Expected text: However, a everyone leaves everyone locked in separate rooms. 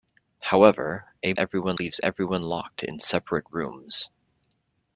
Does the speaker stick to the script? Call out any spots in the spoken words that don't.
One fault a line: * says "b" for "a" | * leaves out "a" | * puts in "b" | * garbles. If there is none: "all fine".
all fine